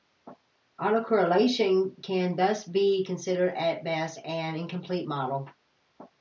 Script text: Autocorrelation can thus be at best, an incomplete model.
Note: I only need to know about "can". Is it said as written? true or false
true